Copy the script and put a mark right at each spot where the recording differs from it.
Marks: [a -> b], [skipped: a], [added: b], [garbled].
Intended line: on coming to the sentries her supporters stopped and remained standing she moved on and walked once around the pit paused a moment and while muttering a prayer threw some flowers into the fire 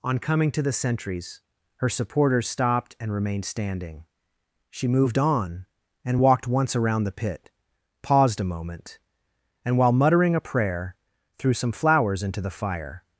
on coming to the sentries her supporters stopped and remained standing she moved on and walked once around the pit paused a moment and while muttering a prayer threw some flowers into the fire